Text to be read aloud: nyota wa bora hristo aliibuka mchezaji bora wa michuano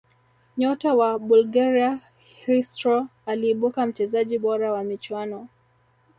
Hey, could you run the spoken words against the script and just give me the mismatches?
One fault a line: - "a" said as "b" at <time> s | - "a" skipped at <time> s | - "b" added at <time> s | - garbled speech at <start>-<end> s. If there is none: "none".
- "bora" said as "bulgaria" at 1.2 s